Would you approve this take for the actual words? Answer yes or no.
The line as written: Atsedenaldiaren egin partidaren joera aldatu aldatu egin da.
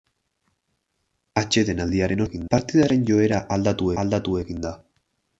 yes